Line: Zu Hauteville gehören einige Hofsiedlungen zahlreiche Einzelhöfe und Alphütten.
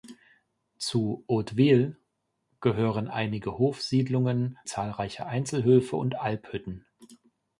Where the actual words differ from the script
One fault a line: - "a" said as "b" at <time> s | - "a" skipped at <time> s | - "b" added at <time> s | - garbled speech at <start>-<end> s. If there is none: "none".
none